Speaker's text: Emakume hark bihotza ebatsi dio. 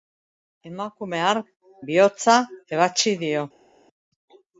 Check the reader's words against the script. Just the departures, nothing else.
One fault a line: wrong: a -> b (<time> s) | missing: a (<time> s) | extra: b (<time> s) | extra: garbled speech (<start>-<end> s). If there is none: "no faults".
no faults